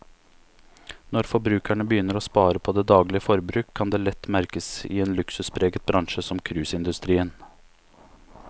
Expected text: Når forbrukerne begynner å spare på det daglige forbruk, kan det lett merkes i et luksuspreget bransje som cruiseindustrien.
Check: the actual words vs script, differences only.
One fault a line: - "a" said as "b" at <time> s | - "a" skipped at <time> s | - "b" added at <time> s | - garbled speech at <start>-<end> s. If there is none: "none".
- "et" said as "en" at 5.0 s